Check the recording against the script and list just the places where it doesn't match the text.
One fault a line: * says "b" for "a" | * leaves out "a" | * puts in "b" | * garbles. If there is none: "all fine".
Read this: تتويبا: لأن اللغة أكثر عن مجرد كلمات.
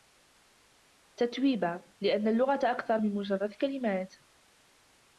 * says "من" for "عن"